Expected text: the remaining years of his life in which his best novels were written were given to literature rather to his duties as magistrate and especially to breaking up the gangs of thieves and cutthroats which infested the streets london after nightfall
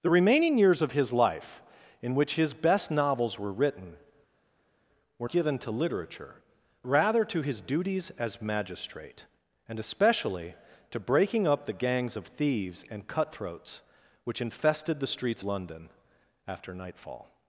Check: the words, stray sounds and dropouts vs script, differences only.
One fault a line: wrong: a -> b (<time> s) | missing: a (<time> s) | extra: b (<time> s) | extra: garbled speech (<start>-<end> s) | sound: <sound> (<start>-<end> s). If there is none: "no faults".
no faults